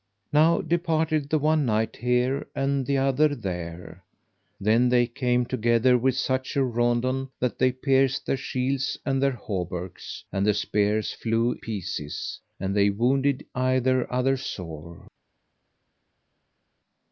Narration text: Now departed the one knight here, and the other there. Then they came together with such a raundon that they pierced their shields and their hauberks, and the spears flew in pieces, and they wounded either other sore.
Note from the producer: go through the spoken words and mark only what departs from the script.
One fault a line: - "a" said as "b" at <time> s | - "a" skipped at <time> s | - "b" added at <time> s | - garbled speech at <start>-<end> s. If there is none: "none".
- "in" skipped at 11.6 s